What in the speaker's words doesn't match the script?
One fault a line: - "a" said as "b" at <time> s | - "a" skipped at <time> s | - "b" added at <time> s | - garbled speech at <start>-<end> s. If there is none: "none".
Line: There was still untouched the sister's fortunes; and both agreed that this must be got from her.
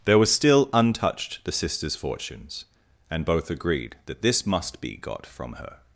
none